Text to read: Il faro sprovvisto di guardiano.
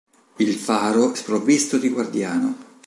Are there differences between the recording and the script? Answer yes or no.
no